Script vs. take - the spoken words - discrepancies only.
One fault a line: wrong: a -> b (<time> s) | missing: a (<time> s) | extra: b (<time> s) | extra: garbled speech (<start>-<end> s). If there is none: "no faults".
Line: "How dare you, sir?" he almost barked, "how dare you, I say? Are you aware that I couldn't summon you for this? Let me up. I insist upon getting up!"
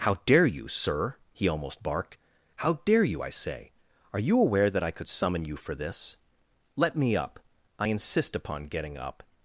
wrong: couldn't -> could (4.9 s)